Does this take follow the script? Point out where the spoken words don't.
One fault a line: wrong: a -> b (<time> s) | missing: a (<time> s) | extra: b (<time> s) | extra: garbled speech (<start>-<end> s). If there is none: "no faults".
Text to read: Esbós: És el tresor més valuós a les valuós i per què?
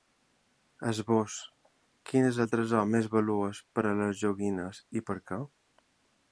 extra: Quin (2.1 s)
extra: per (3.8 s)
wrong: valuós -> joguines (4.3 s)